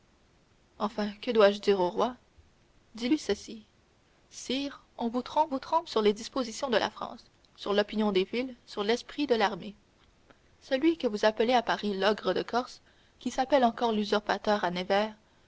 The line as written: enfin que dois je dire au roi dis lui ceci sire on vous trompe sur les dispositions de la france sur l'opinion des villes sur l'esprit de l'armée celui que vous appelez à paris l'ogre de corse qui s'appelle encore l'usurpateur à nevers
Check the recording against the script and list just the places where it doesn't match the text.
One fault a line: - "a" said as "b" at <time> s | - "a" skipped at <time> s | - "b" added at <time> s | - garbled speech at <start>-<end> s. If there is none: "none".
- "vous trompe" added at 5.5 s